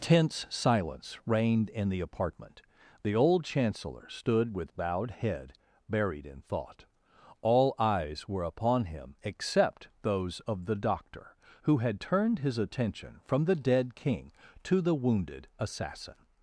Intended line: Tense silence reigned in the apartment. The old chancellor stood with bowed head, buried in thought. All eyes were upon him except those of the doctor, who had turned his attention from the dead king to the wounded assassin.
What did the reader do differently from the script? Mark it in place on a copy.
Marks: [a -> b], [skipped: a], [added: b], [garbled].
Tense silence reigned in the apartment. The old chancellor stood with bowed head, buried in thought. All eyes were upon him except those of the doctor, who had turned his attention from the dead king to the wounded assassin.